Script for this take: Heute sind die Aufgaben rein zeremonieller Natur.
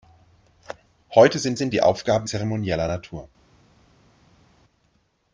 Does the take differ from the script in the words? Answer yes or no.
yes